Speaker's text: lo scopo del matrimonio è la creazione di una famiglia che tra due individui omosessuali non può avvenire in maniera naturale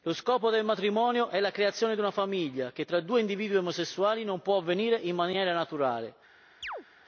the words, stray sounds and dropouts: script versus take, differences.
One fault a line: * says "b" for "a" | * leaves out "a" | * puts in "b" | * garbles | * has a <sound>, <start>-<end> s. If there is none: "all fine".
* has a chirp, 6.6-6.8 s